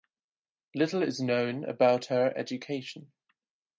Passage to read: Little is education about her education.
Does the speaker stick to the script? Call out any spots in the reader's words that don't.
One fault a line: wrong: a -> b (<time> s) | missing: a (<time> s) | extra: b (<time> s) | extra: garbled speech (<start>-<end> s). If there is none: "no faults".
wrong: education -> known (1.2 s)